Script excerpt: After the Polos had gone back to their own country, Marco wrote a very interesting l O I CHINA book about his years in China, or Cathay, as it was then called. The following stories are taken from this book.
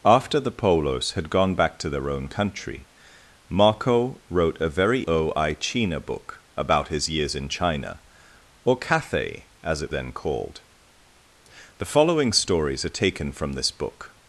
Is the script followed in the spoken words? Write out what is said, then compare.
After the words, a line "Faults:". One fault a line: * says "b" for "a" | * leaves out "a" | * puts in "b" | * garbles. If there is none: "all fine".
After the Polos had gone back to their own country, Marco wrote a very O I CHINA book about his years in China, or Cathay, as it then called. The following stories are taken from this book.
Faults:
* leaves out "interesting l"
* leaves out "was"